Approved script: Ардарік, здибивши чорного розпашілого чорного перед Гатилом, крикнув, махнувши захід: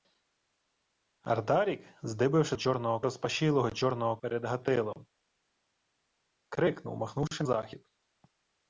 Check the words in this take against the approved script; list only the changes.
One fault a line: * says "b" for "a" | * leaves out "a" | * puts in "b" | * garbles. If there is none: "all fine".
all fine